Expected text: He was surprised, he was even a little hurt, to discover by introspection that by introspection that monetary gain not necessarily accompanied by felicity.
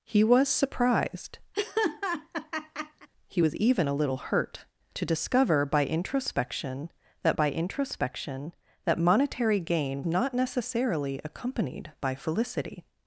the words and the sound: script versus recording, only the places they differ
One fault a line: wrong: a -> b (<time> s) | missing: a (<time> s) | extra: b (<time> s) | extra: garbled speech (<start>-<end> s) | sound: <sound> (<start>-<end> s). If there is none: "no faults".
sound: laugh (1.5-3.1 s)